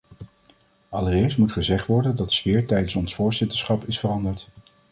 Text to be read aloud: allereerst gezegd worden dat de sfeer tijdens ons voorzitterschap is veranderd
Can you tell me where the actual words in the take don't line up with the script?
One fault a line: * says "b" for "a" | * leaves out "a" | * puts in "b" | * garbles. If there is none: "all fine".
* puts in "moet"